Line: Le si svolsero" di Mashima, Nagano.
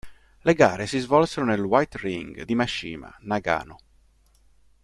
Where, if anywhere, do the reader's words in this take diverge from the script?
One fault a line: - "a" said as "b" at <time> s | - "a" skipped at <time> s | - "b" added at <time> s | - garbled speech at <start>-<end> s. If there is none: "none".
- "gare" added at 0.6 s
- "nel White Ring" added at 1.4 s